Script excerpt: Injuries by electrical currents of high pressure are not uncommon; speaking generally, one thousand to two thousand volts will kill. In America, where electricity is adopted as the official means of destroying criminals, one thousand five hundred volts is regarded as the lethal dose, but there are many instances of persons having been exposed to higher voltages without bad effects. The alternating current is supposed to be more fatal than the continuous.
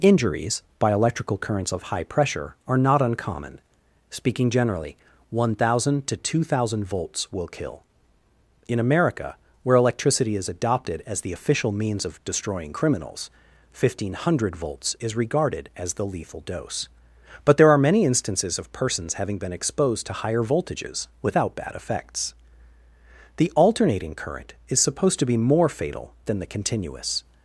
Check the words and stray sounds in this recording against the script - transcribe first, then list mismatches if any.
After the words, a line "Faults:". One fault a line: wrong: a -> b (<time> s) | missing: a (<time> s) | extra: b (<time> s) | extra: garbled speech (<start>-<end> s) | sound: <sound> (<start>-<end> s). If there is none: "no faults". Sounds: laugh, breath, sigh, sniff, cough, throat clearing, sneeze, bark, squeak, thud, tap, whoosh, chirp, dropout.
Injuries by electrical currents of high pressure are not uncommon; speaking generally, one thousand to two thousand volts will kill. In America, where electricity is adopted as the official means of destroying criminals, one thousand five hundred volts is regarded as the lethal dose, but there are many instances of persons having been exposed to higher voltages without bad effects. The alternating current is supposed to be more fatal than the continuous.
Faults:
no faults